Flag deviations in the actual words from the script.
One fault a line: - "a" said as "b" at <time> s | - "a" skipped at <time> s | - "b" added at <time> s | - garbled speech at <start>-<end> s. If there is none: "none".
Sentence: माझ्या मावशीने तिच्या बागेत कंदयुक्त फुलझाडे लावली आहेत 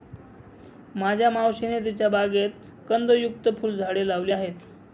none